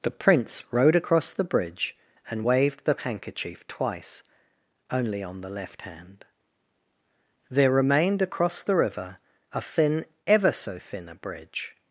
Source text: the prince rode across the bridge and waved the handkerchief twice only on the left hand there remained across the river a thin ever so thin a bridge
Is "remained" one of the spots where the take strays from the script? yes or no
no